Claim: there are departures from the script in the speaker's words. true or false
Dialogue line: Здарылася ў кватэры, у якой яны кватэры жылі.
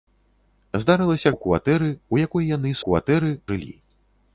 false